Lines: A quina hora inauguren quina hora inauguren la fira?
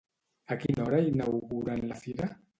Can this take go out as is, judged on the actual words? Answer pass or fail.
fail